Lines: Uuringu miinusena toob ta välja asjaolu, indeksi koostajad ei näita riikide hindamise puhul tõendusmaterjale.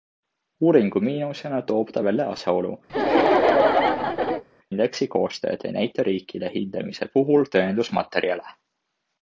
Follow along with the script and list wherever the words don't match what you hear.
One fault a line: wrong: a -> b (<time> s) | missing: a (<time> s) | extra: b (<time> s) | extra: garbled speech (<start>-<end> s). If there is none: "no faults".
no faults